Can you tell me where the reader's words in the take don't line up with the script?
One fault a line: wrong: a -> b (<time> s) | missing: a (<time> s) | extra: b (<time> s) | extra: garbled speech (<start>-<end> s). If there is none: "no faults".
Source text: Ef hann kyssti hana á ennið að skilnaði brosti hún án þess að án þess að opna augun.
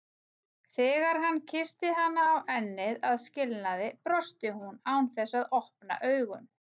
wrong: Ef -> Þegar (0.8 s)
missing: án þess að (5.5 s)